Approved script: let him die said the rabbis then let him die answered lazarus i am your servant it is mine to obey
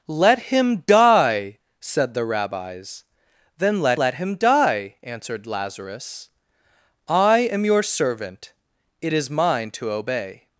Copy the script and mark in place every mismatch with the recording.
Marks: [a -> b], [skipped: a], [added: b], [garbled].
let him die said the rabbis then let [added: let] him die answered lazarus i am your servant it is mine to obey